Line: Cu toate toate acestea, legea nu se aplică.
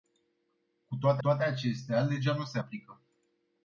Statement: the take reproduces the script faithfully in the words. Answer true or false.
true